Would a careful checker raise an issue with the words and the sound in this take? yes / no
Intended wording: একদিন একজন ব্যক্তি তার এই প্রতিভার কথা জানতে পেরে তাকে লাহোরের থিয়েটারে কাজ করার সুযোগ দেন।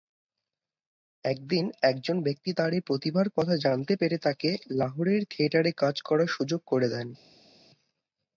yes